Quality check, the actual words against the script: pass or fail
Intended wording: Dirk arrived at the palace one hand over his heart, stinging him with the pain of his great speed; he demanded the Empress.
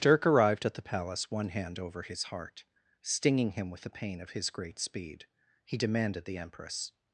pass